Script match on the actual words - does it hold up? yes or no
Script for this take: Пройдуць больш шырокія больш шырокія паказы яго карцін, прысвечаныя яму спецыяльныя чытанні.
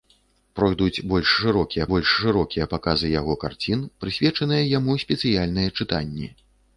yes